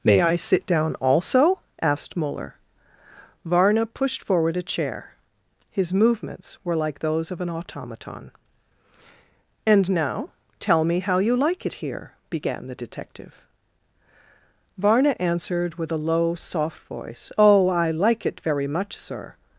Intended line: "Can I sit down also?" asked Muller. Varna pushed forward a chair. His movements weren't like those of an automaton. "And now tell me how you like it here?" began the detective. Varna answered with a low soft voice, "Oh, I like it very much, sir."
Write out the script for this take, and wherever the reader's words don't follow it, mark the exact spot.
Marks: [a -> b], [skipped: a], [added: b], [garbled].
["Can -> May] I sit down also?" asked Muller. Varna pushed forward a chair. His movements [weren't -> were] like those of an automaton. "And now tell me how you like it here?" began the detective. Varna answered with a low soft voice, "Oh, I like it very much, sir."